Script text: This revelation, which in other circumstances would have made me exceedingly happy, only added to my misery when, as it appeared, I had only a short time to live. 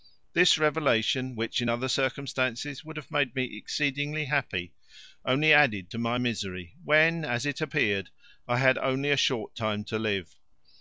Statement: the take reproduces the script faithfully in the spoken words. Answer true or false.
true